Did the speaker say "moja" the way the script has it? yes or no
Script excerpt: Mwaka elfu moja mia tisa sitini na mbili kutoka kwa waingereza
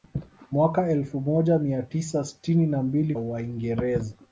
yes